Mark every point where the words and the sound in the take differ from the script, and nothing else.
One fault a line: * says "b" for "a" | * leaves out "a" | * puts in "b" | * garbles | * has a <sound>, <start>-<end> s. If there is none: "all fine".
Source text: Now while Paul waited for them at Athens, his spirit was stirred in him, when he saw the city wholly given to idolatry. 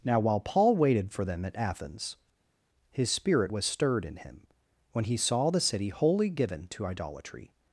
all fine